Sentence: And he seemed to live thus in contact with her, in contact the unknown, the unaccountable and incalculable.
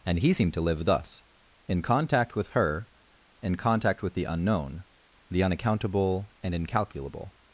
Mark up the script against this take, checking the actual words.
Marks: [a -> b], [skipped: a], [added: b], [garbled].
And he seemed to live thus in contact with her, in contact [added: with] the unknown, the unaccountable and incalculable.